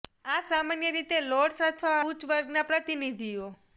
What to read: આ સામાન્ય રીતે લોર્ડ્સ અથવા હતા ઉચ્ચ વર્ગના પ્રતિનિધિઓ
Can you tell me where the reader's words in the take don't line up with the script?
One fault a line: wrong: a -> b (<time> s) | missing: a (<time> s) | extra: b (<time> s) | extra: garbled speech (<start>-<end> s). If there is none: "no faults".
missing: હતા (2.0 s)